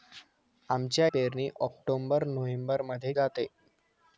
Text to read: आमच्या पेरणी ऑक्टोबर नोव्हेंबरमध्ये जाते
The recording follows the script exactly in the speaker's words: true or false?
true